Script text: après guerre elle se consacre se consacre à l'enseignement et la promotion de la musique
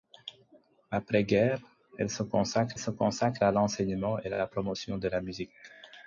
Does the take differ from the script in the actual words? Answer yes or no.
no